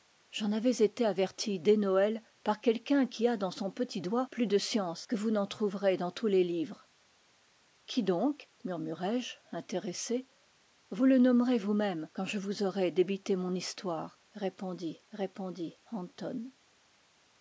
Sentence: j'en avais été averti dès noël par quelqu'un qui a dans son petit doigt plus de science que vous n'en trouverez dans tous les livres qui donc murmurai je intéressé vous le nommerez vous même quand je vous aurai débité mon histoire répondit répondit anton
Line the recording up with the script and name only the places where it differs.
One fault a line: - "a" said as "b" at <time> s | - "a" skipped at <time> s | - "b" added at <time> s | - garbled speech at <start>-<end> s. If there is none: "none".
none